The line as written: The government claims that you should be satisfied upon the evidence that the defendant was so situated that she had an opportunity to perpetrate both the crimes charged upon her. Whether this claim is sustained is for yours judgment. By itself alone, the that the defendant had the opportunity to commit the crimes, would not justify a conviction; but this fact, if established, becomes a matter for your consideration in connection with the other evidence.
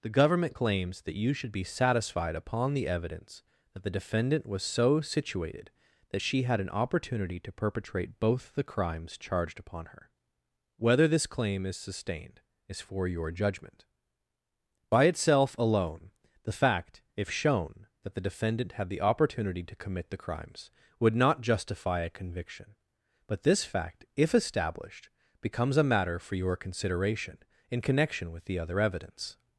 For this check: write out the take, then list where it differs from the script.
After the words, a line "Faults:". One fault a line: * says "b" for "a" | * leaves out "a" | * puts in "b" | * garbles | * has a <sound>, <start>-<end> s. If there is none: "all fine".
The government claims that you should be satisfied upon the evidence that the defendant was so situated that she had an opportunity to perpetrate both the crimes charged upon her. Whether this claim is sustained is for your judgment. By itself alone, the fact, if shown, that the defendant had the opportunity to commit the crimes, would not justify a conviction; but this fact, if established, becomes a matter for your consideration in connection with the other evidence.
Faults:
* says "your" for "yours"
* puts in "fact if shown"